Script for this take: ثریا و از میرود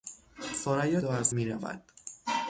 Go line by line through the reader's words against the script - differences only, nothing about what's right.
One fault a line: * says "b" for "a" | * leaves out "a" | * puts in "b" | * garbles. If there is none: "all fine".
all fine